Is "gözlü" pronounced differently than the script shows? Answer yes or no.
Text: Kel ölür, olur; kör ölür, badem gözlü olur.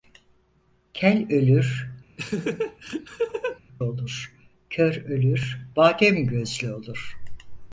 no